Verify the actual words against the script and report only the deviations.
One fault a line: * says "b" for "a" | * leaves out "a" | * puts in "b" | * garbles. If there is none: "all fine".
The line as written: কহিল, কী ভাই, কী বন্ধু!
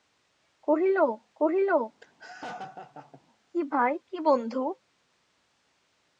* puts in "কহিল"